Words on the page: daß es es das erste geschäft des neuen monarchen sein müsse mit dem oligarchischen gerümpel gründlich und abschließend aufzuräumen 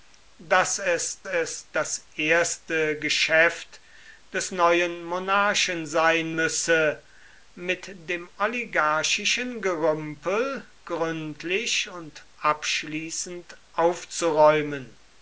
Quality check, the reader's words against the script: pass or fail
pass